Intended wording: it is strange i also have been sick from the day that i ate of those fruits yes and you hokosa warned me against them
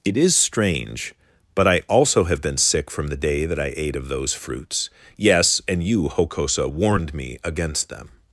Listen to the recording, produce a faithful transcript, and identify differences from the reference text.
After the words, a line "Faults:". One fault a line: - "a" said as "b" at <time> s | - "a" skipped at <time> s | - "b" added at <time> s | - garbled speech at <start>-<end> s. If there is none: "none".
it is strange but i also have been sick from the day that i ate of those fruits yes and you hokosa warned me against them
Faults:
- "but" added at 1.5 s